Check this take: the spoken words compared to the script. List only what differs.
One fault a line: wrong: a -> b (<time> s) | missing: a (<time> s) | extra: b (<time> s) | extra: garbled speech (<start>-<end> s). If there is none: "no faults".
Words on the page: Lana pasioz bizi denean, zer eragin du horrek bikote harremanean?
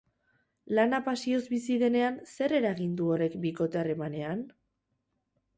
no faults